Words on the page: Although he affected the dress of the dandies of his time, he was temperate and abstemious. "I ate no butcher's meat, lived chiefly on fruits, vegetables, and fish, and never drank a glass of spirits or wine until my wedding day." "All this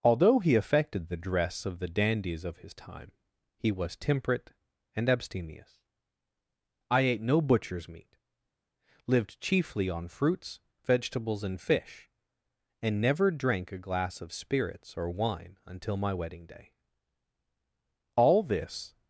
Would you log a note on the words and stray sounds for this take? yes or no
no